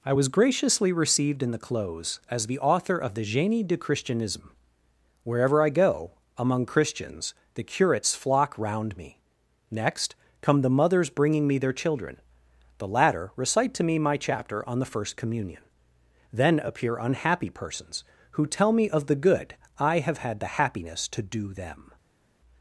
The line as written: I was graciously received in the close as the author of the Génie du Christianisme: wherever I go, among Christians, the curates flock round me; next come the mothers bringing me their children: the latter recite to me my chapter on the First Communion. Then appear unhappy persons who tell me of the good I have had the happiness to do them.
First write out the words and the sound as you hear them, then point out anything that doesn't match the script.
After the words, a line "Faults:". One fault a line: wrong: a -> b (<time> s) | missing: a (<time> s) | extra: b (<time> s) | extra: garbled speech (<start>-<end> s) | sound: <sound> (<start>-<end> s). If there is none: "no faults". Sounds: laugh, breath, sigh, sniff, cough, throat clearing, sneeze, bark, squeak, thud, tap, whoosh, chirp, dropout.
I was graciously received in the close as the author of the Génie du Christianisme: wherever I go, among Christians, the curates flock round me; next come the mothers bringing me their children: the latter recite to me my chapter on the First Communion. Then appear unhappy persons who tell me of the good I have had the happiness to do them.
Faults:
no faults